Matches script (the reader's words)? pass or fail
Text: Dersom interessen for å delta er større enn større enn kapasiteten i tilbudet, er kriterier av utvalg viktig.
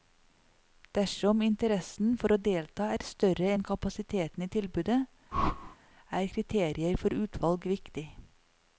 fail